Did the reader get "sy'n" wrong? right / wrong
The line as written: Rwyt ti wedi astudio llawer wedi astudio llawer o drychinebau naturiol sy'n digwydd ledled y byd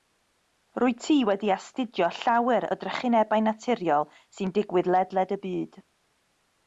right